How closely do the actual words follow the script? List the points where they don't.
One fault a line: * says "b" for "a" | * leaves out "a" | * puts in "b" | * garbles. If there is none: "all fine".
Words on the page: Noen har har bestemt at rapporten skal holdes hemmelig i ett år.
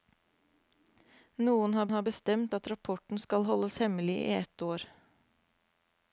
all fine